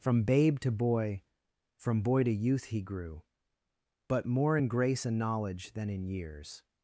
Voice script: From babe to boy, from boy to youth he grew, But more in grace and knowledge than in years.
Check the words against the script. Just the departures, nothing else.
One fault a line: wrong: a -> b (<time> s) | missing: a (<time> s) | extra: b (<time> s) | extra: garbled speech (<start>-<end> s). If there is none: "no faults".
no faults